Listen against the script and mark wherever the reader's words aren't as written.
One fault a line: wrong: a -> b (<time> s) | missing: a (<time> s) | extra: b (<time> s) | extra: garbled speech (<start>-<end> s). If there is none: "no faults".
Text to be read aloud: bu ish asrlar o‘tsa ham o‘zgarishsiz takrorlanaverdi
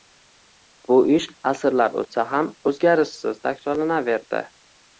no faults